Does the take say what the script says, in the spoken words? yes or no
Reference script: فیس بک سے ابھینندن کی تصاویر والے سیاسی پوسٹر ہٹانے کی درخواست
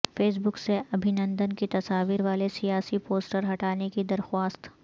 yes